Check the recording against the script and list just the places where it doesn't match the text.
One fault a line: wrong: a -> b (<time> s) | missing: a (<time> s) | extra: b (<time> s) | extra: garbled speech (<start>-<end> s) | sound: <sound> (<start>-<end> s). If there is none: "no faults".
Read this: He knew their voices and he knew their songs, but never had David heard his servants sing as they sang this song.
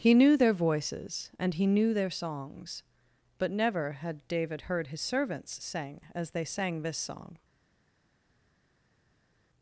no faults